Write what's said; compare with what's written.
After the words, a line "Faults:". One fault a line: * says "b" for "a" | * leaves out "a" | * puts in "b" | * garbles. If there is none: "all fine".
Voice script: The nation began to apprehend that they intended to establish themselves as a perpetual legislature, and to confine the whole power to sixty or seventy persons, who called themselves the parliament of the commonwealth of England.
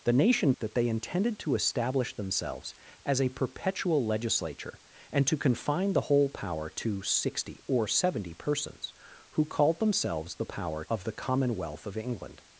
The nation that they intended to establish themselves as a perpetual legislature, and to confine the whole power to sixty or seventy persons, who called themselves the power of the commonwealth of England.
Faults:
* leaves out "began to apprehend"
* says "power" for "parliament"